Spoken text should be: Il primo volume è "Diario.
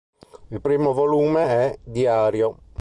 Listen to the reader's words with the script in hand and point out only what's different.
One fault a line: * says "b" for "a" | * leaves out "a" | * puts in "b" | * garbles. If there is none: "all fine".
all fine